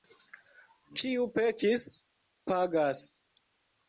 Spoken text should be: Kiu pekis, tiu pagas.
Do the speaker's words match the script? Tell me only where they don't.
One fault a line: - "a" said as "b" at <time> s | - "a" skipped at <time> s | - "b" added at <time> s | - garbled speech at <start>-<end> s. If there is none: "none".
- "tiu" skipped at 1.9 s